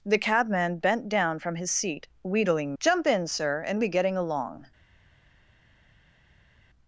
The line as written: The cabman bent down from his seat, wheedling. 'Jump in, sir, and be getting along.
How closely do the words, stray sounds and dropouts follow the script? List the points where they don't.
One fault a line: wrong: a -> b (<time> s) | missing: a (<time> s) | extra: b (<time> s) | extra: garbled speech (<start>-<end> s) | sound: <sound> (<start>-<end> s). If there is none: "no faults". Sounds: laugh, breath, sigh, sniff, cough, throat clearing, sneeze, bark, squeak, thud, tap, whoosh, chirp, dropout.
no faults